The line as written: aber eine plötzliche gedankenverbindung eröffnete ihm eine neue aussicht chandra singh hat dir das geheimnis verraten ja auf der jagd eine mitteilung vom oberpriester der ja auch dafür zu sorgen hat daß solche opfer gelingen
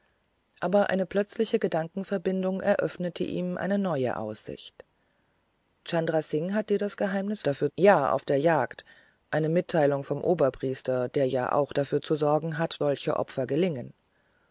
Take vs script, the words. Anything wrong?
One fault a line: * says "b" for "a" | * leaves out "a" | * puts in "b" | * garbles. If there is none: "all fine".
* says "dafür" for "verraten"
* leaves out "daß"